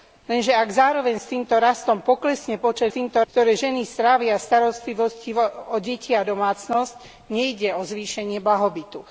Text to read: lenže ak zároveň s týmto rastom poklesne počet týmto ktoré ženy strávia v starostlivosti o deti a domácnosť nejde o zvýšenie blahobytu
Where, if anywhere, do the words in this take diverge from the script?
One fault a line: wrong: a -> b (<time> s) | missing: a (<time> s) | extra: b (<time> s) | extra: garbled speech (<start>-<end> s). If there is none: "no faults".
no faults